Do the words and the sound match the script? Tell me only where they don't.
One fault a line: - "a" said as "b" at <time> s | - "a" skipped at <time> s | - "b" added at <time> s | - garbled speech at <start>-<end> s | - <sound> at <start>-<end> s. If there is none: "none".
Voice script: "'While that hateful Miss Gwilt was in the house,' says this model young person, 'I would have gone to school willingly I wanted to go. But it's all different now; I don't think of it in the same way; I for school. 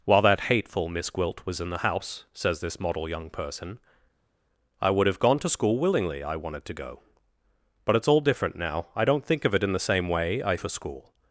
none